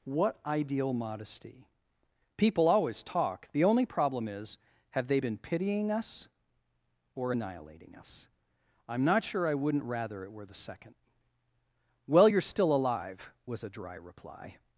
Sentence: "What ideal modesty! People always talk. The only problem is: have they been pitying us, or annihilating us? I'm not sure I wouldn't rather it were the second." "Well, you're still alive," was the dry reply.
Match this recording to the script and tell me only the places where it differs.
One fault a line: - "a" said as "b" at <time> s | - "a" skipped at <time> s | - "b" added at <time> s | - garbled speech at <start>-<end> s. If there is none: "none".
- "the" said as "a" at 13.6 s